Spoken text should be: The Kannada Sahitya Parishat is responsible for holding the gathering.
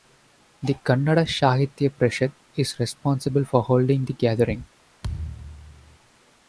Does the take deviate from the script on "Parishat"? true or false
false